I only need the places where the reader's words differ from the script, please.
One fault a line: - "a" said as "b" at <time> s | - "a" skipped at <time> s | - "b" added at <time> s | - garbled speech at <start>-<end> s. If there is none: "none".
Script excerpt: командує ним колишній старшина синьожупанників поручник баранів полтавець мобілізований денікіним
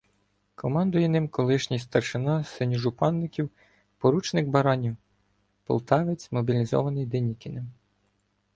none